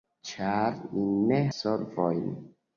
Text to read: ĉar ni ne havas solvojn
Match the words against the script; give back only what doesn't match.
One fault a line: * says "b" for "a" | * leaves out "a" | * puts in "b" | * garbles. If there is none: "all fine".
* leaves out "havas"